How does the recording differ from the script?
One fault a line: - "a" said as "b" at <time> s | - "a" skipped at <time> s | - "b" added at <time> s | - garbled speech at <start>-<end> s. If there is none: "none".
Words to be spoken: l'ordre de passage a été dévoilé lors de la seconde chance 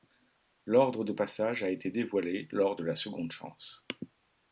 none